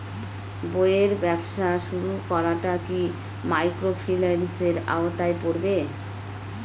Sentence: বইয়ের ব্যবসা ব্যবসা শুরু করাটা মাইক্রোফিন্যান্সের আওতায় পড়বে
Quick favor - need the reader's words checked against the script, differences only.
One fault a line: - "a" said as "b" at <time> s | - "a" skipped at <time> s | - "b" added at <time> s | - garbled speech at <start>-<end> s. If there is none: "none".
- "ব্যবসা" skipped at 1.7 s
- "কি" added at 2.9 s